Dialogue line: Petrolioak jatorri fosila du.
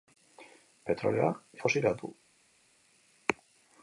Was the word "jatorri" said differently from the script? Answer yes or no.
yes